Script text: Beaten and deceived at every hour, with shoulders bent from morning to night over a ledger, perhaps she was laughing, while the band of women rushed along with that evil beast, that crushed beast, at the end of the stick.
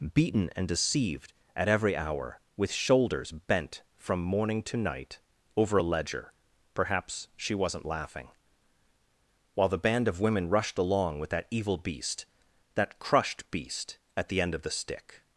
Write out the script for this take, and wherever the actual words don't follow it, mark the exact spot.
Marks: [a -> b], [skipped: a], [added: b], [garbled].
Beaten and deceived at every hour, with shoulders bent from morning to night over a ledger, perhaps she [was -> wasn't] laughing, while the band of women rushed along with that evil beast, that crushed beast, at the end of the stick.